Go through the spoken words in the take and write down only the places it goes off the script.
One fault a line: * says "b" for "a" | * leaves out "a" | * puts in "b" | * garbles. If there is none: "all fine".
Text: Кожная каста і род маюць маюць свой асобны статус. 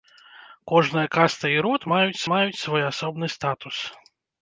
all fine